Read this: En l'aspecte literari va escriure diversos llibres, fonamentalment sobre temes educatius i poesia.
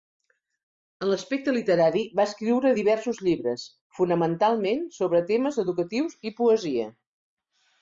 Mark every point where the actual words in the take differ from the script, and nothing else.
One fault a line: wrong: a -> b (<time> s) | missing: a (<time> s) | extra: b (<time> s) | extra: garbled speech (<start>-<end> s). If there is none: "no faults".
no faults